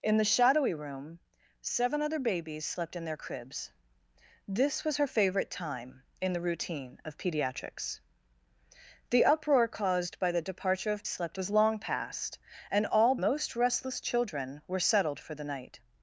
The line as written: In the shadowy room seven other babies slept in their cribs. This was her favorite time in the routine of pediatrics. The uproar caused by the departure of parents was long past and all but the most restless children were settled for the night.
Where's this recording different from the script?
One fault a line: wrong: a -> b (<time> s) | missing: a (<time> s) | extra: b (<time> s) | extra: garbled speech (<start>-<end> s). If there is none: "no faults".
wrong: parents -> slept (11.1 s)
missing: but the (13.2 s)